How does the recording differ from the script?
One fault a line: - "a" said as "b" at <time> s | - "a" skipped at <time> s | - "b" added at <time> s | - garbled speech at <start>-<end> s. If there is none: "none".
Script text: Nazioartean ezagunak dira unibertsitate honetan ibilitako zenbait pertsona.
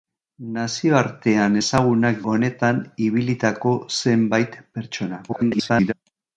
- "dira unibertsitate" skipped at 2.2 s
- garbled speech at 5.3-5.9 s